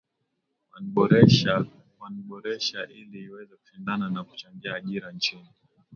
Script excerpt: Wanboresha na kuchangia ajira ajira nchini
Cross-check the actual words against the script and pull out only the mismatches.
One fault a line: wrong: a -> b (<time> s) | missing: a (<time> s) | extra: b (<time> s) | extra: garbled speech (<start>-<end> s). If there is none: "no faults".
extra: ili iweze kushindana (2.9 s)
missing: ajira (5.1 s)